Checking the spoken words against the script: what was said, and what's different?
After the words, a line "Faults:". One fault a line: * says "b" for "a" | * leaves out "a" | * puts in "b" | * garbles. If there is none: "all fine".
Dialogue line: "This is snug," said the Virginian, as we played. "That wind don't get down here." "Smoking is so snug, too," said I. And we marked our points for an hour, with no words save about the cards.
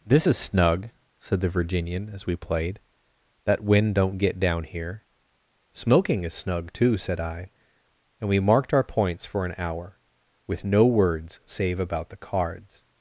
"This is snug," said the Virginian, as we played. "That wind don't get down here." "Smoking is snug, too," said I. And we marked our points for an hour, with no words save about the cards.
Faults:
* leaves out "so"